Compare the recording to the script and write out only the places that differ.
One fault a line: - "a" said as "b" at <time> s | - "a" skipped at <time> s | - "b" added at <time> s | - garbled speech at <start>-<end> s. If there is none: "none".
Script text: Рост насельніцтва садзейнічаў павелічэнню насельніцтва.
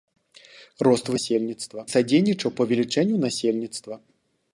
none